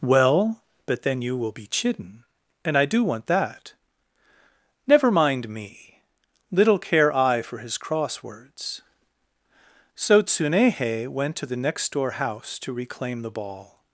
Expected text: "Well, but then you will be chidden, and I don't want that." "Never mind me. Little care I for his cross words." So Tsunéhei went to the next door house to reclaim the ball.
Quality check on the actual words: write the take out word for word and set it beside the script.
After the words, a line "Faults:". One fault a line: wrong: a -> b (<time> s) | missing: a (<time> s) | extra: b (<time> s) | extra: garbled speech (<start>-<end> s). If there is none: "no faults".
"Well, but then you will be chidden, and I do want that." "Never mind me. Little care I for his cross words." So Tsunéhei went to the next door house to reclaim the ball.
Faults:
wrong: don't -> do (2.9 s)